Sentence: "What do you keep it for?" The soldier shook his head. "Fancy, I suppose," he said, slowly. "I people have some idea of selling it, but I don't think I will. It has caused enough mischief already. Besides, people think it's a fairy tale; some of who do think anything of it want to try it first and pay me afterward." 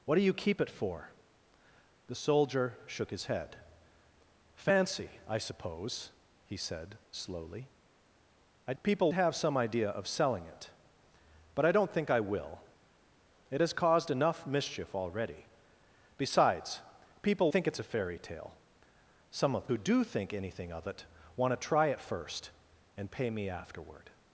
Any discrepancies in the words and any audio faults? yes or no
no